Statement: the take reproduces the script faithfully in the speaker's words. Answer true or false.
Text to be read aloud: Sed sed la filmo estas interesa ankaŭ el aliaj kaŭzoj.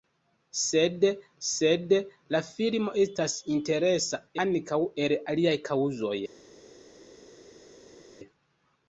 true